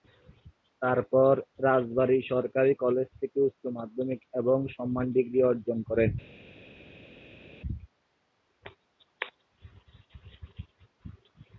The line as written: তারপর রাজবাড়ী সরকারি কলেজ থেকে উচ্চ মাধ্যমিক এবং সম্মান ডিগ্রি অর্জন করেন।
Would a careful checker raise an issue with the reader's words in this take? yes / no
no